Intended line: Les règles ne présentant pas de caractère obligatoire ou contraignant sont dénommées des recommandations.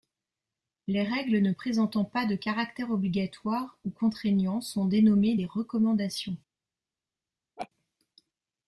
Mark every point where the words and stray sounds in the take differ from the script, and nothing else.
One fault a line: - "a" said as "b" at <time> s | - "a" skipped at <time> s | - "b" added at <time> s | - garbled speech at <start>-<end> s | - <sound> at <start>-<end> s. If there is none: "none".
- laugh at 7.6-7.7 s